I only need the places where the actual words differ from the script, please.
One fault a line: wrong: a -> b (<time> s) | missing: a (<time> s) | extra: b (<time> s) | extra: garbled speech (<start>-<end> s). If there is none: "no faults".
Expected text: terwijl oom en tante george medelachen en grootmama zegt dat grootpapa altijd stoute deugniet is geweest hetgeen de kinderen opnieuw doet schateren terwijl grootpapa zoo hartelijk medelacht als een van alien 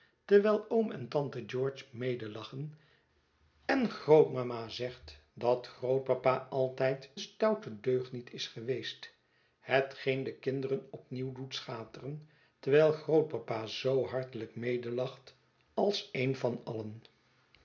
no faults